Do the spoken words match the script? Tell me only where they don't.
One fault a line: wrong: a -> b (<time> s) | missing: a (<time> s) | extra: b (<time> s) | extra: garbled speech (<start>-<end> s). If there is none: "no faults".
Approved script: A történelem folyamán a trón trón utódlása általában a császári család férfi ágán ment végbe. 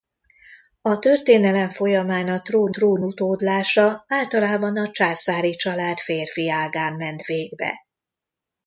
no faults